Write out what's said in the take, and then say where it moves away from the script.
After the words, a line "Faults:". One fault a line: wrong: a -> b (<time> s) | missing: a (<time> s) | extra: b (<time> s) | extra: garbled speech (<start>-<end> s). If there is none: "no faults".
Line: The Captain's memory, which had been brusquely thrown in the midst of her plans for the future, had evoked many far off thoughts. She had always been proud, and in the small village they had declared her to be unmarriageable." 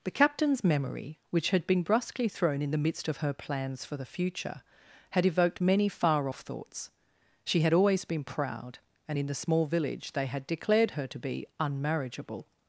The Captain's memory, which had been brusquely thrown in the midst of her plans for the future, had evoked many far off thoughts. She had always been proud, and in the small village they had declared her to be unmarriageable."
Faults:
no faults